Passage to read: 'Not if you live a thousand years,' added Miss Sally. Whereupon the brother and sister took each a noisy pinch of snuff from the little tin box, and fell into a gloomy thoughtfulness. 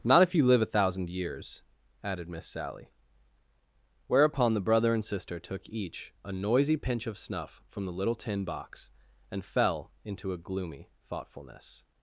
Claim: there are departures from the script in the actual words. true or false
false